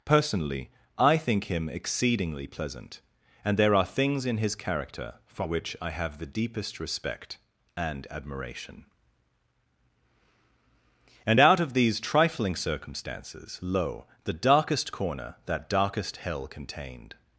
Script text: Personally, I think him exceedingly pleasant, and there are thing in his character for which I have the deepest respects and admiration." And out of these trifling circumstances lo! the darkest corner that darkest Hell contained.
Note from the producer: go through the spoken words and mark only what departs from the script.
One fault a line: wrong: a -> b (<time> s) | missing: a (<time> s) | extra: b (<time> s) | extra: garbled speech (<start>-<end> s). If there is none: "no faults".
wrong: thing -> things (3.9 s)
wrong: respects -> respect (6.8 s)